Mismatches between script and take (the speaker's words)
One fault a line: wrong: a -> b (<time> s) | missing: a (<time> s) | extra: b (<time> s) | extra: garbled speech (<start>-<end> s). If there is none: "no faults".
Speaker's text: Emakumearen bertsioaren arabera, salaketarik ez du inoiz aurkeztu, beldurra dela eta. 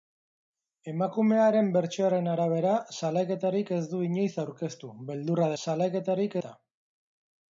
wrong: dela -> salaketarik (5.6 s)